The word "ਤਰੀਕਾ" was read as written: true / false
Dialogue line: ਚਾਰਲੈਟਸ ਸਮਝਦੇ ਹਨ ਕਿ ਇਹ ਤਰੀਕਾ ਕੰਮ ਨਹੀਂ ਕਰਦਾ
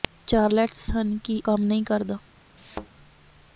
false